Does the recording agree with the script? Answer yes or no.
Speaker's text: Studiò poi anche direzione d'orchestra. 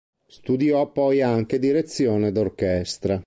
yes